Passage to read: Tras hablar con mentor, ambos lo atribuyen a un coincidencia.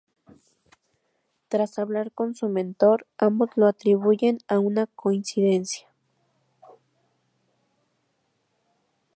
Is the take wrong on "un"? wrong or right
wrong